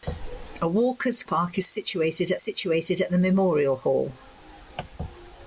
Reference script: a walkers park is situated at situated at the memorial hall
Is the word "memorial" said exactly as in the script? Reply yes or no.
yes